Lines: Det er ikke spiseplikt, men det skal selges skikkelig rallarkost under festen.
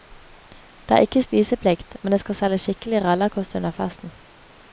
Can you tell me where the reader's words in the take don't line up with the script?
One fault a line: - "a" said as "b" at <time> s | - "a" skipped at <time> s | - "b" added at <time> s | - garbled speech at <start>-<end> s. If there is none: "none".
none